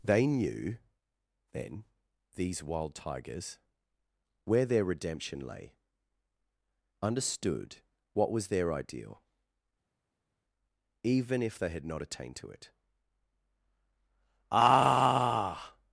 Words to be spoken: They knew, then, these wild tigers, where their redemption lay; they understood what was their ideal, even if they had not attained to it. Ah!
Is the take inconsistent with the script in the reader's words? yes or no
yes